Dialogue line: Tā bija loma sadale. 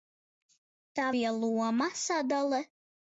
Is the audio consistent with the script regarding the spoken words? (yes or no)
yes